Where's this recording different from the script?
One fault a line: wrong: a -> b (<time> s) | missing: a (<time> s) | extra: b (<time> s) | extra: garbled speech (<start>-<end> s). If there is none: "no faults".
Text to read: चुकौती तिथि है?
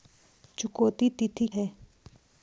no faults